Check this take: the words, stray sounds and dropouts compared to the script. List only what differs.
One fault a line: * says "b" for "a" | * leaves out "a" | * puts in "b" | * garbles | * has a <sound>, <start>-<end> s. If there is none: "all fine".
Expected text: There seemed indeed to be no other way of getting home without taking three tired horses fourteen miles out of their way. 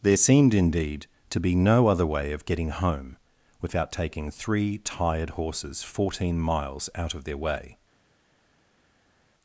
all fine